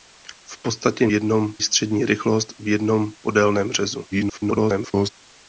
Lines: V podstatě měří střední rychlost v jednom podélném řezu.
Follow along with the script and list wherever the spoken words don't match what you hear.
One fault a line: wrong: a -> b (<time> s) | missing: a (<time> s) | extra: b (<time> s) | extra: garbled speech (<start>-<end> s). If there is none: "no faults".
wrong: měří -> jednom (1.1 s)
extra: garbled speech (4.1-5.1 s)